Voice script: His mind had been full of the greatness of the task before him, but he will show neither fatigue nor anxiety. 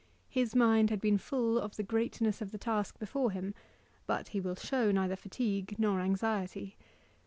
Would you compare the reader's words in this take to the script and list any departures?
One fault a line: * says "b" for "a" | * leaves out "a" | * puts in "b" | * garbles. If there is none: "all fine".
all fine